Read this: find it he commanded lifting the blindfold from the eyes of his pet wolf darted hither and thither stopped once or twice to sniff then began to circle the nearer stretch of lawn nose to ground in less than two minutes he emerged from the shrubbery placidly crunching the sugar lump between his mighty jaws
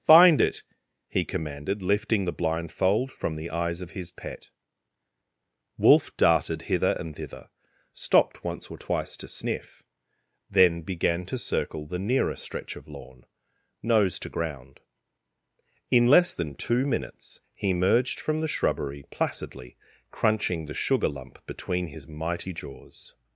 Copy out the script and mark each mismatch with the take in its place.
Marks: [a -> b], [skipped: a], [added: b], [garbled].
find it he commanded lifting the blindfold from the eyes of his pet wolf darted hither and thither stopped once or twice to sniff then began to circle the nearer stretch of lawn nose to ground in less than two minutes he emerged from the shrubbery placidly crunching the sugar lump between his mighty jaws